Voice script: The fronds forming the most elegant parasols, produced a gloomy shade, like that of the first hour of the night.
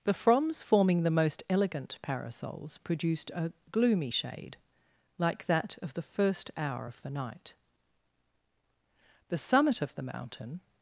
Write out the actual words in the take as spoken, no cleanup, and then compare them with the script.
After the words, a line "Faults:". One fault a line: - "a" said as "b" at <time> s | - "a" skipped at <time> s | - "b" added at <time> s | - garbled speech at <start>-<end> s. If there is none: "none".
The fronds forming the most elegant parasols, produced a gloomy shade, like that of the first hour of the night. The summit of the mountain
Faults:
- "The summit of the mountain" added at 9.3 s